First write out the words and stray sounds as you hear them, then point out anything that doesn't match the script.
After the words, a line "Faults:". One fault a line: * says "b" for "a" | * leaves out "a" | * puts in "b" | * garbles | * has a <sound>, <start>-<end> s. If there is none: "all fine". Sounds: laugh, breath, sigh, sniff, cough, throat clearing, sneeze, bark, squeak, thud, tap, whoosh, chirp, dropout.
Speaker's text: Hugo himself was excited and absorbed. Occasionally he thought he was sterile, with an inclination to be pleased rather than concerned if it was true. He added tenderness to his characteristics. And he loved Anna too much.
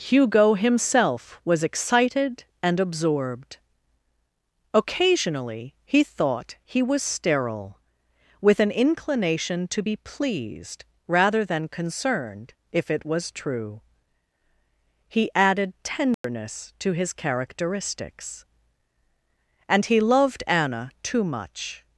Hugo himself was excited and absorbed. Occasionally he thought he was sterile, with an inclination to be pleased rather than concerned if it was true. He added tenderness to his characteristics. And he loved Anna too much.
Faults:
* has a dropout, 16.1-16.2 s